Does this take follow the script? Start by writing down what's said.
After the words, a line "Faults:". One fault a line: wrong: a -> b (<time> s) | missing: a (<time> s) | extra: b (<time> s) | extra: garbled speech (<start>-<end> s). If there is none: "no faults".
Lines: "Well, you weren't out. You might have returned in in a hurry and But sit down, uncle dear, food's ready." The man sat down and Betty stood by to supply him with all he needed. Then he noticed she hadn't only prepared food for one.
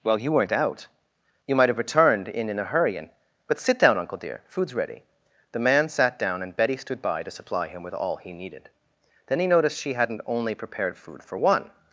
"Well, you weren't out. You might have returned in in a hurry and But sit down, uncle dear, food's ready." The man sat down and Betty stood by to supply him with all he needed. Then he noticed she hadn't only prepared food for one.
Faults:
no faults